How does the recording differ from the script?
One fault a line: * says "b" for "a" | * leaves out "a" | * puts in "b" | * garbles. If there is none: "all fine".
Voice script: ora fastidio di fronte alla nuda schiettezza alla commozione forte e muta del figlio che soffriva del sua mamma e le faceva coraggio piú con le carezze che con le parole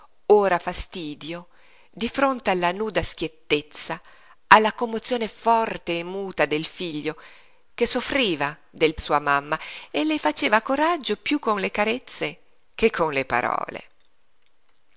all fine